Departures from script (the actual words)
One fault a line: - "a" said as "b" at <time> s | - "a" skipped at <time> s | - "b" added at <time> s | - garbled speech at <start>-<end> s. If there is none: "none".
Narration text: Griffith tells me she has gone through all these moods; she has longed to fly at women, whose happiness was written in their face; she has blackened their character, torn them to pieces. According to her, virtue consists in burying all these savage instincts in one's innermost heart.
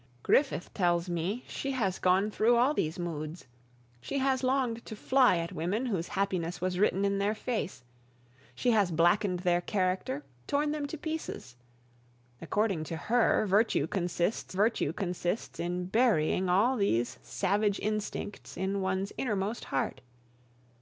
- "virtue consists" added at 14.5 s